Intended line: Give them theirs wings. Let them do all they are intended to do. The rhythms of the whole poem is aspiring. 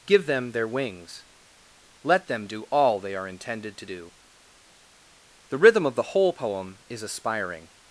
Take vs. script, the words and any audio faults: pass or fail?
fail